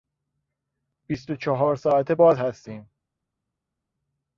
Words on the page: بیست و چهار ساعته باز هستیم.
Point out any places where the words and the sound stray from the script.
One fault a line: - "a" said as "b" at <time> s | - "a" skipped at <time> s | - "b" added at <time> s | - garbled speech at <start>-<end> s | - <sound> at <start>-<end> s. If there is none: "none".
none